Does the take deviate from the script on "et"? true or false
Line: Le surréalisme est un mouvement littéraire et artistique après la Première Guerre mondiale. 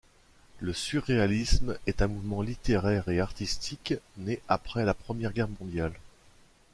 false